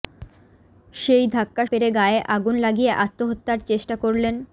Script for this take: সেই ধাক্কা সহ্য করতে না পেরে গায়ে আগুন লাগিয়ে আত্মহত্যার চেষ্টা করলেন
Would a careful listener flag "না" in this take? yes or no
yes